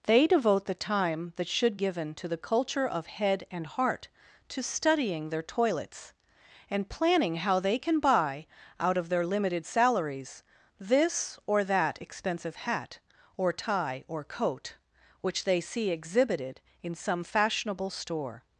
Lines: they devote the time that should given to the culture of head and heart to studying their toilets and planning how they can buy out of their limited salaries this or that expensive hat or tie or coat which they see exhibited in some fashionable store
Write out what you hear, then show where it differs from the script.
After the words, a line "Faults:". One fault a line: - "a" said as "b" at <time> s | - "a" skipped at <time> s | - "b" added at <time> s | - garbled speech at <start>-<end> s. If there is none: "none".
they devote the time that should given to the culture of head and heart to studying their toilets and planning how they can buy out of their limited salaries this or that expensive hat or tie or coat which they see exhibited in some fashionable store
Faults:
none